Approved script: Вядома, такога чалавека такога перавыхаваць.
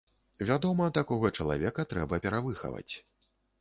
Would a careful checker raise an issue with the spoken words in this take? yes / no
yes